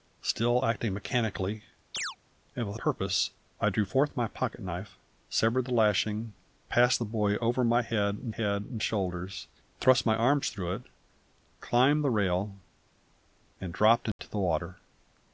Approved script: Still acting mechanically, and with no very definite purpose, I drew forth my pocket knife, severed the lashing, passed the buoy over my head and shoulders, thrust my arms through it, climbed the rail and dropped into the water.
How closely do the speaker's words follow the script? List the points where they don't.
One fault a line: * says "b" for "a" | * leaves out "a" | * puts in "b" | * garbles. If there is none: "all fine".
* leaves out "no very definite"
* puts in "head and"